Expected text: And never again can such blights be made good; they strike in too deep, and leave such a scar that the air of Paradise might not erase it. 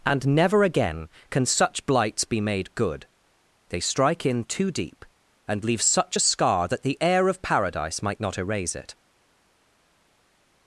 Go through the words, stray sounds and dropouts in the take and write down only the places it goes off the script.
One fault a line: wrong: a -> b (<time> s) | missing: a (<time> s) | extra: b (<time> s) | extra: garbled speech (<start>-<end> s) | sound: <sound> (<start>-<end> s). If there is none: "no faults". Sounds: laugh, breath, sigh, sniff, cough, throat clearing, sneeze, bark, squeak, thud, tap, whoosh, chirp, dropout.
no faults